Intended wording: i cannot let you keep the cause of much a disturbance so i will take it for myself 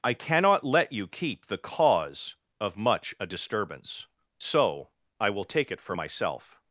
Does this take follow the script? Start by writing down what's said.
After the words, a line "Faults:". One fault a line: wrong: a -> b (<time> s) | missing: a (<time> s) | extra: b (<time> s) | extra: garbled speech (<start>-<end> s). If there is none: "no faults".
i cannot let you keep the cause of much a disturbance so i will take it for myself
Faults:
no faults